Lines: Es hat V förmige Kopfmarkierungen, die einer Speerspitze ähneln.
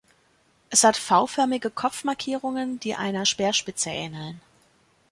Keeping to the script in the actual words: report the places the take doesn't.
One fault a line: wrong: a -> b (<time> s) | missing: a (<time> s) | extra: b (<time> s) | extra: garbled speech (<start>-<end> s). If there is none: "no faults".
no faults